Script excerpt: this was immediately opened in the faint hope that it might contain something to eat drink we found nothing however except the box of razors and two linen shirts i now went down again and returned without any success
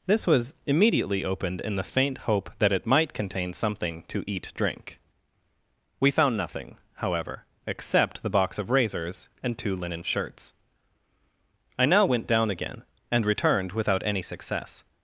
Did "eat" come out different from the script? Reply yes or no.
no